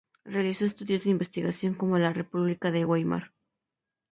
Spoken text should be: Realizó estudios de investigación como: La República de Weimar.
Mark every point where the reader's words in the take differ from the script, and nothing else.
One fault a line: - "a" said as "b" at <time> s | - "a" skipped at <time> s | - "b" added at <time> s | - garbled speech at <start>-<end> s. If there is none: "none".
none